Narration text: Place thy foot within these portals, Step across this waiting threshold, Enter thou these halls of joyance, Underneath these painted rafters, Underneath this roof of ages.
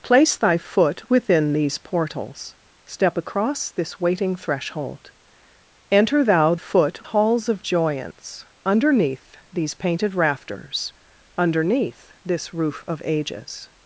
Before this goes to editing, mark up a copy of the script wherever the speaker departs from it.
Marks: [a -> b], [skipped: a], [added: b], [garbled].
Place thy foot within these portals, Step across this waiting threshold, Enter thou [these -> foot] halls of joyance, Underneath these painted rafters, Underneath this roof of ages.